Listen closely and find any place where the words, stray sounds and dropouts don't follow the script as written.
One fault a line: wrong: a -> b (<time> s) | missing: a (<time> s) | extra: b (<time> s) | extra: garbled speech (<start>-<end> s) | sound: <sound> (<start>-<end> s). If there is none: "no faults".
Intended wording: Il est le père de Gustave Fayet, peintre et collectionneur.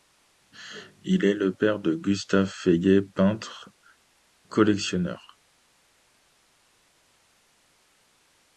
missing: et (3.7 s)